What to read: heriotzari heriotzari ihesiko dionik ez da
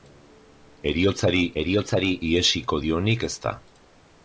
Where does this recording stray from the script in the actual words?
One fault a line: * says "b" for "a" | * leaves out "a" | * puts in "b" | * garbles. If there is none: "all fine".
all fine